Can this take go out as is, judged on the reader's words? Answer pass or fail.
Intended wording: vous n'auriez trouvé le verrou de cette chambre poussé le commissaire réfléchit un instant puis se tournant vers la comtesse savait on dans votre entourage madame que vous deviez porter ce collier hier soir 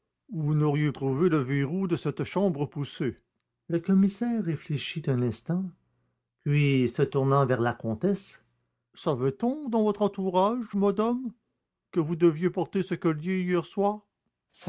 pass